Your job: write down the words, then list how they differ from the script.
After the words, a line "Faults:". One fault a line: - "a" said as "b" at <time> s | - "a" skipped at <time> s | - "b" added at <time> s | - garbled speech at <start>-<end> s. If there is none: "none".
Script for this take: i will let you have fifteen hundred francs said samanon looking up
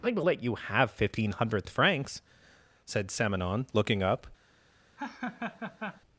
i will let you have fifteen hundredth francs said samanon looking up
Faults:
- "hundred" said as "hundredth" at 1.3 s